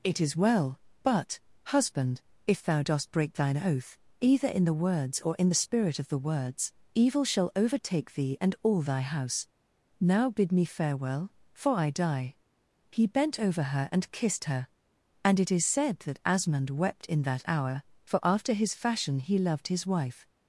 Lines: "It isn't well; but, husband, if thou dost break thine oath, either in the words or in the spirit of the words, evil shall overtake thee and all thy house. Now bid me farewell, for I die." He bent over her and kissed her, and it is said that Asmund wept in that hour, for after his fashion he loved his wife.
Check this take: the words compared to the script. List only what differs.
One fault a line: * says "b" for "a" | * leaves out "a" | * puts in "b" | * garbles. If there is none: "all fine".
* says "is" for "isn't"